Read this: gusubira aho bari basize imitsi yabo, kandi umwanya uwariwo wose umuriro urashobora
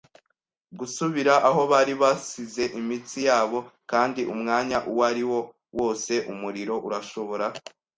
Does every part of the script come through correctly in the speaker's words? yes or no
yes